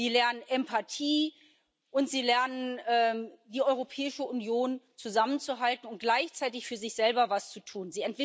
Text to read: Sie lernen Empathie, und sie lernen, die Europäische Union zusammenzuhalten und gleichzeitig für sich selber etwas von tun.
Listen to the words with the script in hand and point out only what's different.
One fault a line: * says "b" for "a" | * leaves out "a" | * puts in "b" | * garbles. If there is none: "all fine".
* says "zu" for "von"